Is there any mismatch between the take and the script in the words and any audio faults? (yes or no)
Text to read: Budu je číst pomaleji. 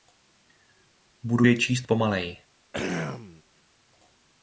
yes